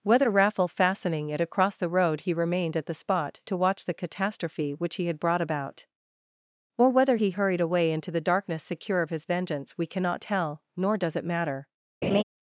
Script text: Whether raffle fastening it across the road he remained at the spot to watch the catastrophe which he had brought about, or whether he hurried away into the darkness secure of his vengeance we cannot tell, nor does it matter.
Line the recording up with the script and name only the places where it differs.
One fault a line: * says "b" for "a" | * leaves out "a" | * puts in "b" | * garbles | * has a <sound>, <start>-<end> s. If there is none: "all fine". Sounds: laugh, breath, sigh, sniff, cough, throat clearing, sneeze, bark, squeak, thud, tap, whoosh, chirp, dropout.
* has a laugh, 12.0-12.2 s